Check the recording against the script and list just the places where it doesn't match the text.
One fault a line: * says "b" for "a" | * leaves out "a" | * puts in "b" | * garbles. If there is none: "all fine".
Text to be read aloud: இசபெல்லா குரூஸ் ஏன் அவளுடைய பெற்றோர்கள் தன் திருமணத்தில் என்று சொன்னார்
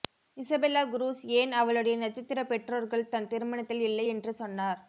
* puts in "நட்சத்திர"
* puts in "இல்லை"